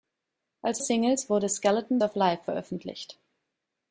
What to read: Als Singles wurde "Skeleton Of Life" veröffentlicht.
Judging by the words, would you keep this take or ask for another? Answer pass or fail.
pass